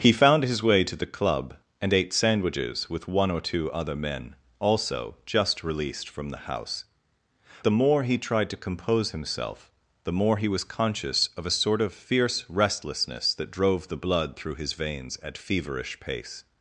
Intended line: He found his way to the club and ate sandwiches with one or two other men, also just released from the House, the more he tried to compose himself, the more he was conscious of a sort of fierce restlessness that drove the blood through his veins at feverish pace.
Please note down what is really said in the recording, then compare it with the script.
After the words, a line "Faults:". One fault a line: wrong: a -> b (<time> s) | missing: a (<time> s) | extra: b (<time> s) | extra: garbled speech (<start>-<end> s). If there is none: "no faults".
He found his way to the club and ate sandwiches with one or two other men, also just released from the House, the more he tried to compose himself, the more he was conscious of a sort of fierce restlessness that drove the blood through his veins at feverish pace.
Faults:
no faults